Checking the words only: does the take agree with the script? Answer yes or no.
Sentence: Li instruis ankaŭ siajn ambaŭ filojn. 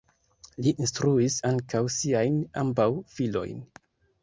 yes